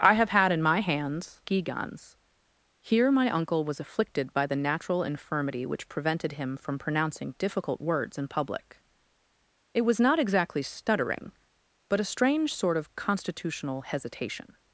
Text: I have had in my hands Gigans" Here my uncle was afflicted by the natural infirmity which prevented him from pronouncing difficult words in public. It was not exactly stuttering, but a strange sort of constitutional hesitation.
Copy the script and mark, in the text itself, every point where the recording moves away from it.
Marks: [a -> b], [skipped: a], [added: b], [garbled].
I have had in my hands Gigans" Here my uncle was afflicted by the natural infirmity which prevented him from pronouncing difficult words in public. It was not exactly stuttering, but a strange sort of constitutional hesitation.